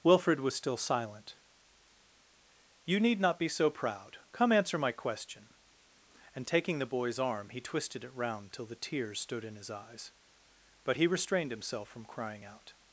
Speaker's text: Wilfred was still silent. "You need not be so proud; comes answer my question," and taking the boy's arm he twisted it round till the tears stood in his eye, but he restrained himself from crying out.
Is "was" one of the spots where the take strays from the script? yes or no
no